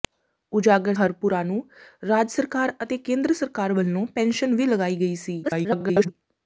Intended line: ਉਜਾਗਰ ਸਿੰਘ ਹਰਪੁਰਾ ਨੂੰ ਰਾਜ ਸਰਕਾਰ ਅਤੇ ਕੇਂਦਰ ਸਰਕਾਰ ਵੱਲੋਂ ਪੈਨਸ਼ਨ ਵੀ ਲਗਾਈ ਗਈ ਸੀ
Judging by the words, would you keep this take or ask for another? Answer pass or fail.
fail